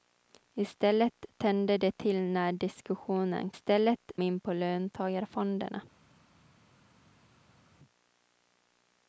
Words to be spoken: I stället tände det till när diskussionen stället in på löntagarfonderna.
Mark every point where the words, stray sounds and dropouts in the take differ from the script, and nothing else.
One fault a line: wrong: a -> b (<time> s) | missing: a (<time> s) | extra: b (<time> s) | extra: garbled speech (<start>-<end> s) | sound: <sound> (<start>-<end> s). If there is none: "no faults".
no faults